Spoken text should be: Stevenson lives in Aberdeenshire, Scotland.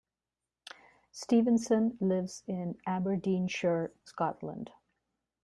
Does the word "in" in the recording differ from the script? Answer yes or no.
no